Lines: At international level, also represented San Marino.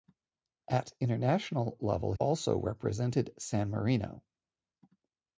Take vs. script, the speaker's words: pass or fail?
pass